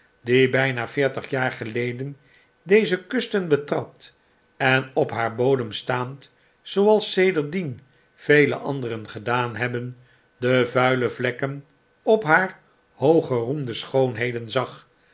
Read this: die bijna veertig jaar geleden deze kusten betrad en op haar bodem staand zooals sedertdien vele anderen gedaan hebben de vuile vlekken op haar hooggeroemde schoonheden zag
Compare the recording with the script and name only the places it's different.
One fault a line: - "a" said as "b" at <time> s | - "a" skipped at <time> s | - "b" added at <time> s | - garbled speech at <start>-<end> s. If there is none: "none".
none